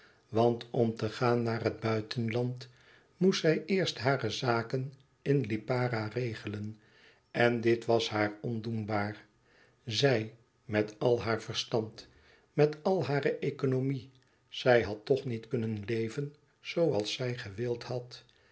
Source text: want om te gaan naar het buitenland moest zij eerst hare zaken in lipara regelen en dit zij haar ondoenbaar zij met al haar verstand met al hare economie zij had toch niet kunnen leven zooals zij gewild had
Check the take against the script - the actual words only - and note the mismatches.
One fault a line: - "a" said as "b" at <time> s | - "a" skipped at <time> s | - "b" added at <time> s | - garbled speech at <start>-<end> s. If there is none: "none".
- "zij" said as "was" at 7.8 s